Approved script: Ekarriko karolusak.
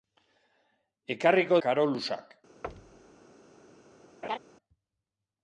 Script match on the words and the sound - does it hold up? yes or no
no